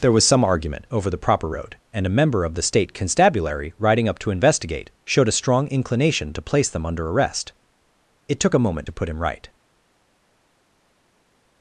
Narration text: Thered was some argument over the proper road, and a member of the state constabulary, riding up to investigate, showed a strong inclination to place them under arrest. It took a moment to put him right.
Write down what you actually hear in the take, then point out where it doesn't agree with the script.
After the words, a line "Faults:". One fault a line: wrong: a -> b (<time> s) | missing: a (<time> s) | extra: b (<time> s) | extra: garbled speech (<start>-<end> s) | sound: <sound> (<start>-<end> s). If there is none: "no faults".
There was some argument over the proper road, and a member of the state constabulary, riding up to investigate, showed a strong inclination to place them under arrest. It took a moment to put him right.
Faults:
wrong: Thered -> There (0.0 s)